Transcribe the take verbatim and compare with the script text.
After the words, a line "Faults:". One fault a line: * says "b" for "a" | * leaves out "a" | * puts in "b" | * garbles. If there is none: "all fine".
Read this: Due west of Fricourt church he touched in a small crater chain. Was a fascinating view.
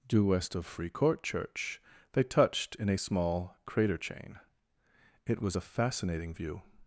Due west of Fricourt church they touched in a small crater chain. It was a fascinating view.
Faults:
* says "they" for "he"
* puts in "It"